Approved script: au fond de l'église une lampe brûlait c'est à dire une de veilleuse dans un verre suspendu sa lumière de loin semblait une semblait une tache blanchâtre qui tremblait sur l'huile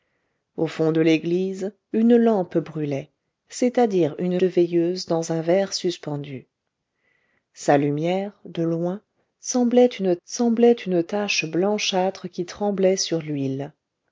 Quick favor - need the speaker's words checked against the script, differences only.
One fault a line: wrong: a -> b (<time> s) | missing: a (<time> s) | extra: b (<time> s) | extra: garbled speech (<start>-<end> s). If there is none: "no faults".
no faults